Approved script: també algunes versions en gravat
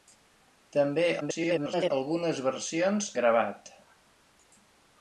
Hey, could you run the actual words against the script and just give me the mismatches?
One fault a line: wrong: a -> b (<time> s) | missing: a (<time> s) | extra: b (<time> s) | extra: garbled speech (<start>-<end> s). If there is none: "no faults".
extra: garbled speech (1.2-1.9 s)
missing: en (3.1 s)